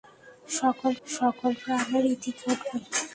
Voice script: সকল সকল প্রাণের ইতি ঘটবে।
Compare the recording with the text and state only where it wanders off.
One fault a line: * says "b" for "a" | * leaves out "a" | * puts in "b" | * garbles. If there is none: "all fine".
all fine